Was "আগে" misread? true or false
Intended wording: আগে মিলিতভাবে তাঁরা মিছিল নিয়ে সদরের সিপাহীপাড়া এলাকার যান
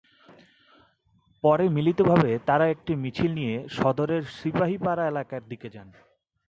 true